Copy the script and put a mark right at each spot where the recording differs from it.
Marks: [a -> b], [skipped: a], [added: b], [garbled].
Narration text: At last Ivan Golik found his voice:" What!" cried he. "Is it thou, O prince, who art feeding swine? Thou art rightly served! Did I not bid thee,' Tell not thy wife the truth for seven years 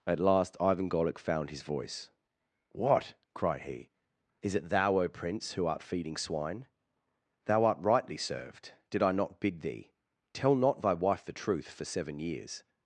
At last Ivan Golik found his voice:" What!" cried he. "Is it thou, O prince, who art feeding swine? Thou art rightly served! Did I not bid thee,' Tell not thy wife the truth for seven years